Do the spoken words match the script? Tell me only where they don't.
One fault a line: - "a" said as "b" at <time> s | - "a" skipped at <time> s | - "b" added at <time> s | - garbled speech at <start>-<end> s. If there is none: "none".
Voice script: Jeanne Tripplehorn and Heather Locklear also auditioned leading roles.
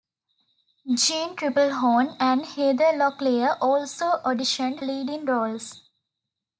none